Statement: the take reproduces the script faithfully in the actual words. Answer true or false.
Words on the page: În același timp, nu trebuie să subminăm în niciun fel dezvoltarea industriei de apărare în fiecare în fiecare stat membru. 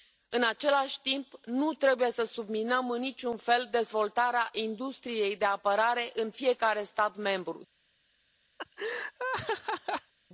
false